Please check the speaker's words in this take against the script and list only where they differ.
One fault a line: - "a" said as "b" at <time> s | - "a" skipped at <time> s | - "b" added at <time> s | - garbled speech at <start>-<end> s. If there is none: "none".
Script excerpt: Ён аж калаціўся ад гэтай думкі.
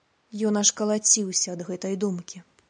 none